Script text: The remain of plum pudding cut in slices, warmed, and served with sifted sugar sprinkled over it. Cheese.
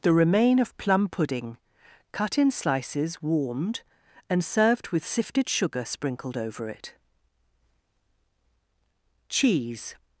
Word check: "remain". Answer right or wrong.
right